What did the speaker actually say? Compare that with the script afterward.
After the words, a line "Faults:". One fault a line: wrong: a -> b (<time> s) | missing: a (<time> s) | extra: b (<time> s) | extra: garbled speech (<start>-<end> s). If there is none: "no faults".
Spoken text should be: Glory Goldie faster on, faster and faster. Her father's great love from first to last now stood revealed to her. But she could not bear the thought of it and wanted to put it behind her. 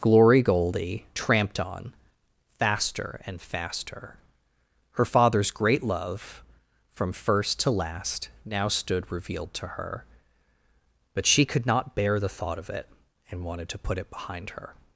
Glory Goldie tramped on, faster and faster. Her father's great love from first to last now stood revealed to her. But she could not bear the thought of it and wanted to put it behind her.
Faults:
wrong: faster -> tramped (1.1 s)